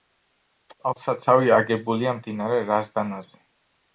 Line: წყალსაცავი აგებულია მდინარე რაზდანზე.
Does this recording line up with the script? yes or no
yes